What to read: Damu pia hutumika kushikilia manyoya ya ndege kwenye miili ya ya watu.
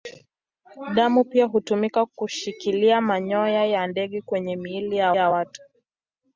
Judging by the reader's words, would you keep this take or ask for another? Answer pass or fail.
pass